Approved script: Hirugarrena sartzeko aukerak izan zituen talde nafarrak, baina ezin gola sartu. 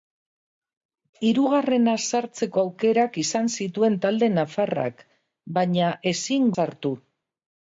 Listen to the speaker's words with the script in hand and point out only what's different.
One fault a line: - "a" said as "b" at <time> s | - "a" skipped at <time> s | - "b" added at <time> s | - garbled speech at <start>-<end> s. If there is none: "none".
- "gola" skipped at 6.5 s